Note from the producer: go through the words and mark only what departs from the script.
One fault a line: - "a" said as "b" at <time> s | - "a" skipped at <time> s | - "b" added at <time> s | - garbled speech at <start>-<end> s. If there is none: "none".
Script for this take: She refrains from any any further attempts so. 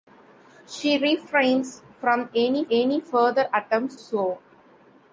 none